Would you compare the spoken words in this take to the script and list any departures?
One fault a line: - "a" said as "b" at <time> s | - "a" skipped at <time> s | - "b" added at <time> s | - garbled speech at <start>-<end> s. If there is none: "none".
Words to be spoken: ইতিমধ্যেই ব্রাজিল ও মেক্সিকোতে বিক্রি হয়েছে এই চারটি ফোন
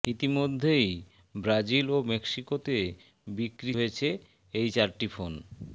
none